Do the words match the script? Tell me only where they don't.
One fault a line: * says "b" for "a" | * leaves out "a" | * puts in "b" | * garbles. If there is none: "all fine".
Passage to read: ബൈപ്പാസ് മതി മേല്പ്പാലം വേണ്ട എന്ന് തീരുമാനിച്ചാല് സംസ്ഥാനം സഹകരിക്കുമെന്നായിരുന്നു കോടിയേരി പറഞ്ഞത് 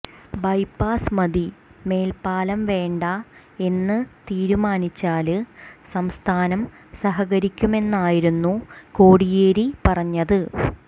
all fine